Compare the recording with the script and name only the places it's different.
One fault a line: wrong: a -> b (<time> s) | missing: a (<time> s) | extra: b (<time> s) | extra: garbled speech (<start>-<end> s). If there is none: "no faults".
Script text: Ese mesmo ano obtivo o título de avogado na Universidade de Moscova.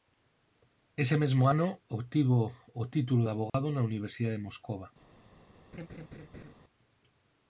no faults